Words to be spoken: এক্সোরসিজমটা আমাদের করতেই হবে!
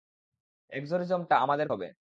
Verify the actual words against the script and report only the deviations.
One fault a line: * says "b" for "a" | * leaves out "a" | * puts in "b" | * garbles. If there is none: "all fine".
* leaves out "করতেই"